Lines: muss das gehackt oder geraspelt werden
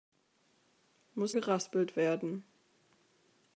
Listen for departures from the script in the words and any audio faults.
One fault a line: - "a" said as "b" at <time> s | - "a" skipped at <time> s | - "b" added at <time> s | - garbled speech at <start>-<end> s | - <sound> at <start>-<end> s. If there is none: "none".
- "das gehackt oder" skipped at 1.4 s